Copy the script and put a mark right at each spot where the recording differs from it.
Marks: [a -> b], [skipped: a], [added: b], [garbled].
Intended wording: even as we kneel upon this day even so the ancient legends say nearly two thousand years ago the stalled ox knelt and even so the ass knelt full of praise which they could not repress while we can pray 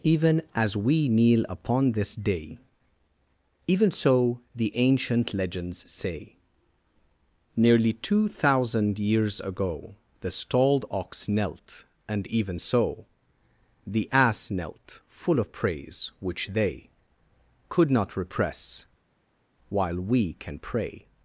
even as we kneel upon this day even so the ancient legends say nearly two thousand years ago the stalled ox knelt and even so the ass knelt full of praise which they could not repress while we can pray